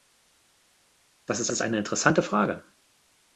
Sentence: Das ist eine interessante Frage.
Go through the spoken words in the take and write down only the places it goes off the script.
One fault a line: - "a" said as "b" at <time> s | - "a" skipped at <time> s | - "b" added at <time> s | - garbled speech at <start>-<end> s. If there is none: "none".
- "ist" added at 1.5 s